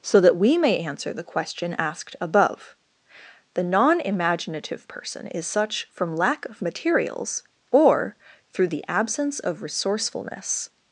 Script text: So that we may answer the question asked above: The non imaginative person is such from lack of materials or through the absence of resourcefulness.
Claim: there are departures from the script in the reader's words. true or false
false